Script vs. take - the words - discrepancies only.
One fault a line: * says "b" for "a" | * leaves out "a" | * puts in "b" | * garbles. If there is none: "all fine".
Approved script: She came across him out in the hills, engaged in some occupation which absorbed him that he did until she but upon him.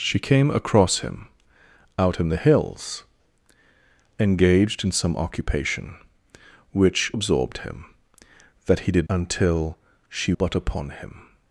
all fine